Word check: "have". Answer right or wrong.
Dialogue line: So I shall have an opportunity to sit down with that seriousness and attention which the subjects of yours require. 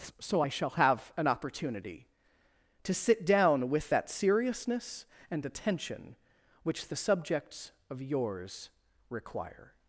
right